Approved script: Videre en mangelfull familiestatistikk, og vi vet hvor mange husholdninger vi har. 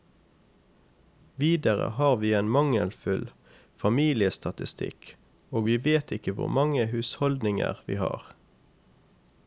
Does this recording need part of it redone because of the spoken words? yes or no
yes